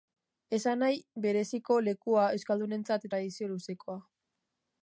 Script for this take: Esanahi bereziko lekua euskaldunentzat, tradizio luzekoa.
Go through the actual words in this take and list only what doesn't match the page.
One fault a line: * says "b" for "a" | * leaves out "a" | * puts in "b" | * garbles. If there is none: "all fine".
all fine